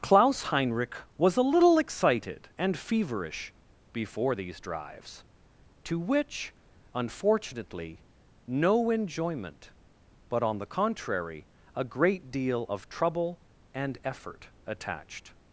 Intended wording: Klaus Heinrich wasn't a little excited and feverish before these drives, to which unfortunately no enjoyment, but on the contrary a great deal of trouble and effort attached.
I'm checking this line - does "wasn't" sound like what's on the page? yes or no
no